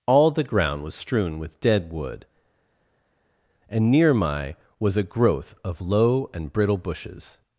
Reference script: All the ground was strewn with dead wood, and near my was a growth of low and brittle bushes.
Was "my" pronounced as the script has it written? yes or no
yes